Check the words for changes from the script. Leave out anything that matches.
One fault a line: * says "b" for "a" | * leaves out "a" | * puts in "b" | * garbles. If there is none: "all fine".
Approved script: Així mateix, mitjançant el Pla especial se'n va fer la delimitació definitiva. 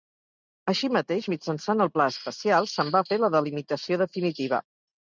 all fine